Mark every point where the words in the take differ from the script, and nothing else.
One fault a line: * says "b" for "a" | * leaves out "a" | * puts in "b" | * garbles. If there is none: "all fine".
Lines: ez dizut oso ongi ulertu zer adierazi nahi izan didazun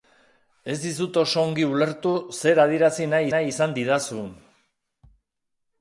* puts in "nahi"